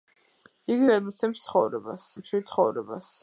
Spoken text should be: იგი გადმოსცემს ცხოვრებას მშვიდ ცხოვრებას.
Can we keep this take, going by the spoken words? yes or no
yes